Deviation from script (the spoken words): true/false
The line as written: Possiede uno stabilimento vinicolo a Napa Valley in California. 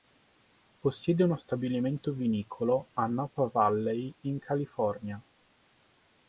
false